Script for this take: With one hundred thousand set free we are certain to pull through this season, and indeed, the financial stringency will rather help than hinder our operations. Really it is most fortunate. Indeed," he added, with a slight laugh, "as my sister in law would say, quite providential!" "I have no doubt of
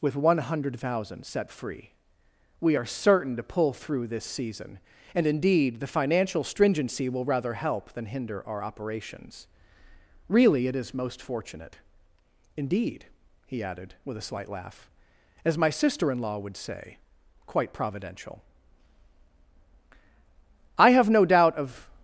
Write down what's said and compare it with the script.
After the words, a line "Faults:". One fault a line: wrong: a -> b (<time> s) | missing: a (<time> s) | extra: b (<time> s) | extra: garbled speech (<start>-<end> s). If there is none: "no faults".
With one hundred thousand set free we are certain to pull through this season, and indeed, the financial stringency will rather help than hinder our operations. Really it is most fortunate. Indeed," he added, with a slight laugh, "as my sister in law would say, quite providential!" "I have no doubt of
Faults:
no faults